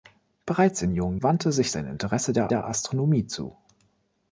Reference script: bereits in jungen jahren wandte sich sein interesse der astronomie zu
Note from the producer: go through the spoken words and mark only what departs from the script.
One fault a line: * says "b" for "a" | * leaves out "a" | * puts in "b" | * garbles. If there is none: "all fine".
* leaves out "jahren"
* puts in "der"